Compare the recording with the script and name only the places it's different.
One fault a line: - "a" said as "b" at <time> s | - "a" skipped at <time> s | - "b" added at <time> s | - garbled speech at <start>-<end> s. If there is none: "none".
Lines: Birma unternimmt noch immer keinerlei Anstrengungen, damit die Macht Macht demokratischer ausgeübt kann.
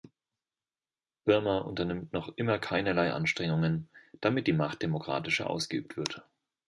- "Macht" skipped at 4.8 s
- "kann" said as "wird" at 6.0 s